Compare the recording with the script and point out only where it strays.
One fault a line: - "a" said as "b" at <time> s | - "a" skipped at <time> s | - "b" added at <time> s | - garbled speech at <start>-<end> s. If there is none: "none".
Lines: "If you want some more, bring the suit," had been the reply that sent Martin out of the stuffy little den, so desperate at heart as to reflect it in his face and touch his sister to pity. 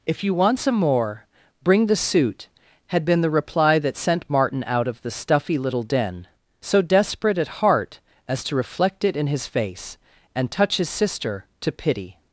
none